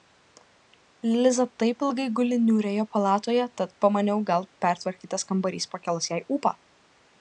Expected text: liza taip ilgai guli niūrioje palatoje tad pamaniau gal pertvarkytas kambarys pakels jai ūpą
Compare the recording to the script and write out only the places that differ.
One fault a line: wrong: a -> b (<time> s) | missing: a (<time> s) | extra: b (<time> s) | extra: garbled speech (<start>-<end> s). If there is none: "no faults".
no faults